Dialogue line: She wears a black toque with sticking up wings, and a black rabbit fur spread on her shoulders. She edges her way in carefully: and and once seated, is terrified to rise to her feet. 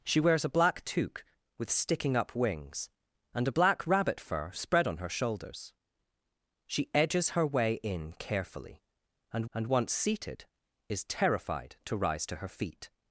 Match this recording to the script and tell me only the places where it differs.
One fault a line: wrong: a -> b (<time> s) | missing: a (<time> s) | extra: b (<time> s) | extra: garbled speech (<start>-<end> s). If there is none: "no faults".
no faults